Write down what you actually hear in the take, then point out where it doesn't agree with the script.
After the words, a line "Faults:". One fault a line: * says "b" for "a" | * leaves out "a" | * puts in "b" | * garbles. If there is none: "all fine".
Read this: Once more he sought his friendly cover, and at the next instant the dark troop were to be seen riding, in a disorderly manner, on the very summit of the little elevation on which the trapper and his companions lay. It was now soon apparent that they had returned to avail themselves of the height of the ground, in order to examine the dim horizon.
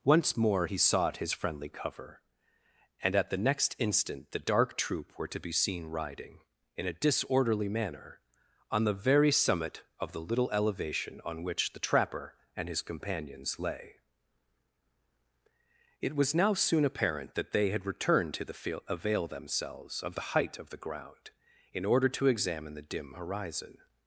Once more he sought his friendly cover, and at the next instant the dark troop were to be seen riding, in a disorderly manner, on the very summit of the little elevation on which the trapper and his companions lay. It was now soon apparent that they had returned to the field avail themselves of the height of the ground, in order to examine the dim horizon.
Faults:
* puts in "the field"